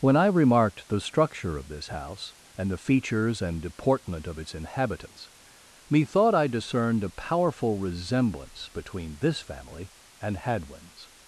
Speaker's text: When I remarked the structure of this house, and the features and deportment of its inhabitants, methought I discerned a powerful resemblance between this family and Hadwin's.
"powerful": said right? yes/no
yes